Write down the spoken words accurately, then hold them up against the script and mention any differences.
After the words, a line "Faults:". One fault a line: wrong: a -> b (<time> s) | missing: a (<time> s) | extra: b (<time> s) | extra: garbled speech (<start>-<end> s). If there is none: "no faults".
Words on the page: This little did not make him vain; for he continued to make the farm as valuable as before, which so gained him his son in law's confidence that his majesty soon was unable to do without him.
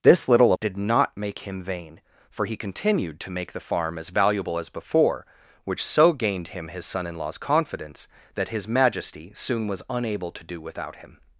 This little did not make him vain; for he continued to make the farm as valuable as before, which so gained him his son in law's confidence that his majesty soon was unable to do without him.
Faults:
no faults